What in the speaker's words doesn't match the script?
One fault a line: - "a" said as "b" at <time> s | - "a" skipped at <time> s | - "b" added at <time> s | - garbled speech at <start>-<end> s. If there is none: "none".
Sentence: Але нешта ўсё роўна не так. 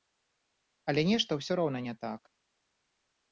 none